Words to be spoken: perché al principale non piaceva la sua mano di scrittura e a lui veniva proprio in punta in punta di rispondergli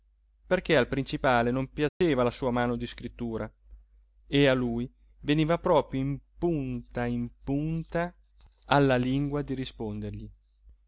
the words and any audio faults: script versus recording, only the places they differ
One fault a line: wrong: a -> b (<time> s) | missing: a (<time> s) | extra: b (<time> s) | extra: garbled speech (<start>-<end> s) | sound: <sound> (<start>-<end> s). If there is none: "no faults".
sound: dropout (1.9-2.0 s)
extra: alla lingua (8.7 s)